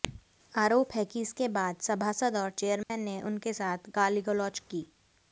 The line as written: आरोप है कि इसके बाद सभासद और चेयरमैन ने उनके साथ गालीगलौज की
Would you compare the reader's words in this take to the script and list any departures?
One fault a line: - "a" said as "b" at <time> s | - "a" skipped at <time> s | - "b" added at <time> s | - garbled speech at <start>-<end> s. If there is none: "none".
none